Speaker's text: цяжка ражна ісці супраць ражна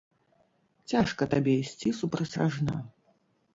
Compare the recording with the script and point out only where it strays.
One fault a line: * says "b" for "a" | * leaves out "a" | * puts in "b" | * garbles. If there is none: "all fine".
* says "табе" for "ражна"